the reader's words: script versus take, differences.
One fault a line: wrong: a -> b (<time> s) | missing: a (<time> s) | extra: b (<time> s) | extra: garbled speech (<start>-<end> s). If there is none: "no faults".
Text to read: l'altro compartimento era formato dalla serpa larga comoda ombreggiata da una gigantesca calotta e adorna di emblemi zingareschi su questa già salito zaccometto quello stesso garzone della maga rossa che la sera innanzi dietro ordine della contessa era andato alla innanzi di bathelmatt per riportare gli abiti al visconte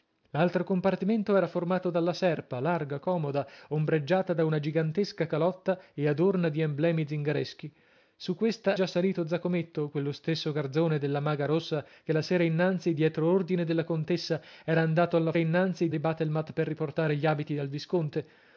no faults